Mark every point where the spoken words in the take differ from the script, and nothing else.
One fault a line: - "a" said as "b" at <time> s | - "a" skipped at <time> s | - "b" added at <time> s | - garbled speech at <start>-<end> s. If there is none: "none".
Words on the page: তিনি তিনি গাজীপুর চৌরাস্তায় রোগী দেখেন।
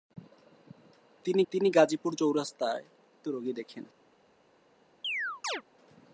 none